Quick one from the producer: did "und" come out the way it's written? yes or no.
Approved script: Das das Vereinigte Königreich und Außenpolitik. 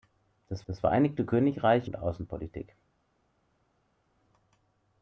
yes